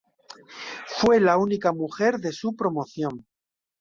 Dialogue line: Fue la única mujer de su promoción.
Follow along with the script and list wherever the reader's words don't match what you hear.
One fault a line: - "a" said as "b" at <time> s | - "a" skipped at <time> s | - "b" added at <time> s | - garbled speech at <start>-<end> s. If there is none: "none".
none